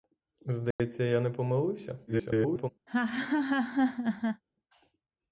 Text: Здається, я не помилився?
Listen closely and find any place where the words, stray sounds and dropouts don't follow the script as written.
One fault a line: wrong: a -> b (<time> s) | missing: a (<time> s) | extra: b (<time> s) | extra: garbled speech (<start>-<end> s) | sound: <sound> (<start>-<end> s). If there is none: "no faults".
sound: dropout (0.7-0.8 s)
extra: garbled speech (2.1-2.7 s)
sound: laugh (2.9-4.4 s)